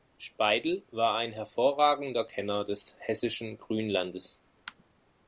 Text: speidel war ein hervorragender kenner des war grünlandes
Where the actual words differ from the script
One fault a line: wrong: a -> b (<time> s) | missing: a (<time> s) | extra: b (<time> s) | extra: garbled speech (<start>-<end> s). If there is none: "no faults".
wrong: war -> hessischen (3.0 s)